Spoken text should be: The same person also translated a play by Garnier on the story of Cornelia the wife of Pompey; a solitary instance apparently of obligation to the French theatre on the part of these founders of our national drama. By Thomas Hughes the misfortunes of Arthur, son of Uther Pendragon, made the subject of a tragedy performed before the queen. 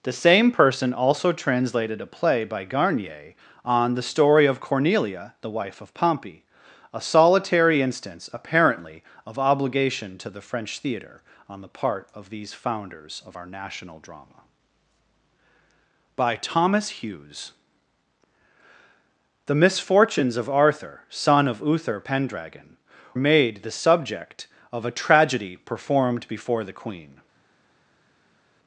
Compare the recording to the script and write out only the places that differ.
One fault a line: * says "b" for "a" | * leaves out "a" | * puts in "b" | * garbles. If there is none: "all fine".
all fine